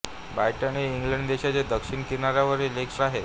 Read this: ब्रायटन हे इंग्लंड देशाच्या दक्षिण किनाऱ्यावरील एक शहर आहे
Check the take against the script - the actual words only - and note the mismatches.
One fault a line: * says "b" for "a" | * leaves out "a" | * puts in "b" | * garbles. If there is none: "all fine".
* leaves out "शहर"